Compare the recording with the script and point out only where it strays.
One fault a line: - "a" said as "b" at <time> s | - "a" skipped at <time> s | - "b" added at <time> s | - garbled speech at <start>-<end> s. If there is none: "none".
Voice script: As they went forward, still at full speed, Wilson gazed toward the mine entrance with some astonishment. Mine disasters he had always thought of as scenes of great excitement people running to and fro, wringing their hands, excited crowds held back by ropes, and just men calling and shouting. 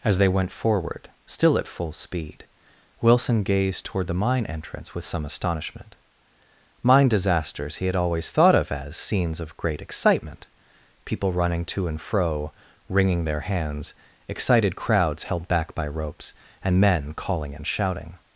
- "just" skipped at 16.8 s